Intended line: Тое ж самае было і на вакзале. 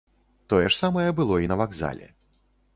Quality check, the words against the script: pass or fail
pass